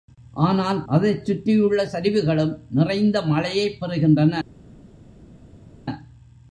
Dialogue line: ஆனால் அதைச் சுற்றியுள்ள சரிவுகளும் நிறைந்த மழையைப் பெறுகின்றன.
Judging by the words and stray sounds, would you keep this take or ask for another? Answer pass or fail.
pass